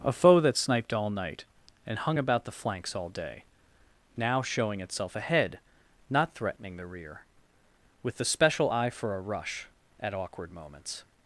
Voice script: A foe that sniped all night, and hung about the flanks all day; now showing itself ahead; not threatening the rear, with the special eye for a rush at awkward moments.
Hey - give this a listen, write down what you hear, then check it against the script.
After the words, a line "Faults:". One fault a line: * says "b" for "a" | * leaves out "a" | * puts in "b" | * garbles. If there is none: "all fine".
A foe that sniped all night, and hung about the flanks all day; now showing itself ahead; not threatening the rear, with the special eye for a rush at awkward moments.
Faults:
all fine